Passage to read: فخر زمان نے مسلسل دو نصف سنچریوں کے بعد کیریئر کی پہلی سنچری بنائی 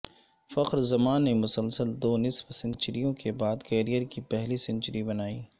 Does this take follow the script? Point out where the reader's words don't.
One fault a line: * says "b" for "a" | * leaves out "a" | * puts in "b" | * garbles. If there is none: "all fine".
all fine